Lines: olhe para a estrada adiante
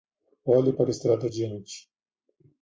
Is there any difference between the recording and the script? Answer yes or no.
no